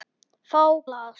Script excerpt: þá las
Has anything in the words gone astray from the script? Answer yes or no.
no